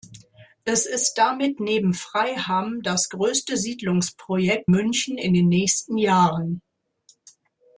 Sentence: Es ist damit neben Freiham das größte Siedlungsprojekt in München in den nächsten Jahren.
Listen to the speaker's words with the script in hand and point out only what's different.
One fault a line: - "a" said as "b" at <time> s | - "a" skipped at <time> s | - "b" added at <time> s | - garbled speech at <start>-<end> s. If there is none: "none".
- "in" skipped at 4.7 s